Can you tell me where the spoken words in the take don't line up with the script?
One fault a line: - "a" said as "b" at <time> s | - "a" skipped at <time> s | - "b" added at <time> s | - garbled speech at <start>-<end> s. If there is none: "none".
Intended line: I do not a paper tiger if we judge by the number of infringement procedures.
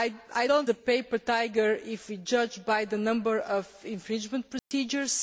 none